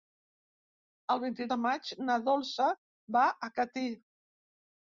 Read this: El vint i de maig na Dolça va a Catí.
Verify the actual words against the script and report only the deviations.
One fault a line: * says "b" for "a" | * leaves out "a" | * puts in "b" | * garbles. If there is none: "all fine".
all fine